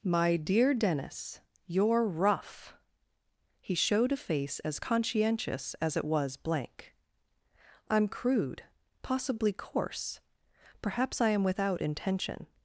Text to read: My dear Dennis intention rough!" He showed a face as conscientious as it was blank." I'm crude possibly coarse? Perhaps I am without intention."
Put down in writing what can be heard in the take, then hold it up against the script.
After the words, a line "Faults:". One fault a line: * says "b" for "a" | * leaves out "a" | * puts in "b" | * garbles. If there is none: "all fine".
My dear Dennis you're rough!" He showed a face as conscientious as it was blank." I'm crude possibly coarse? Perhaps I am without intention."
Faults:
* says "you're" for "intention"